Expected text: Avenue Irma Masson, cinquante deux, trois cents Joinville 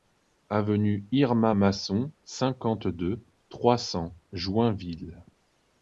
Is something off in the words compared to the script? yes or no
no